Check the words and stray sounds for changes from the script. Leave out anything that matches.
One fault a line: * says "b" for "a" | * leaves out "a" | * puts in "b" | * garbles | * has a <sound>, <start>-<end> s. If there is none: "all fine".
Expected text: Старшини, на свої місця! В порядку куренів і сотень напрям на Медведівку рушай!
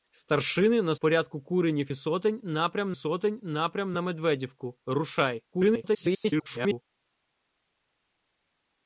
* leaves out "свої місця В"
* puts in "сотень напрям"
* garbles